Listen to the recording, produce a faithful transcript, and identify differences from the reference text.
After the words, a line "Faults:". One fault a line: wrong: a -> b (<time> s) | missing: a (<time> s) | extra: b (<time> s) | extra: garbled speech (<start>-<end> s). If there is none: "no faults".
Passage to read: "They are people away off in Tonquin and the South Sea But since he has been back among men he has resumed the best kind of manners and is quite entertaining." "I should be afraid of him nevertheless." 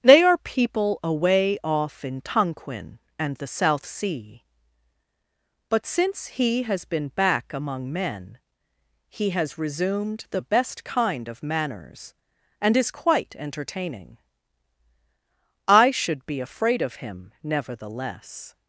"They are people away off in Tonquin and the South Sea But since he has been back among men he has resumed the best kind of manners and is quite entertaining." "I should be afraid of him nevertheless."
Faults:
no faults